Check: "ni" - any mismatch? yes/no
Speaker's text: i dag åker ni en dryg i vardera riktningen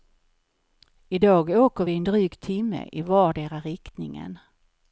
yes